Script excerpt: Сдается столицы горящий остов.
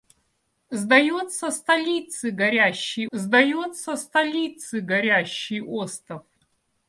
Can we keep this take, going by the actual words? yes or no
no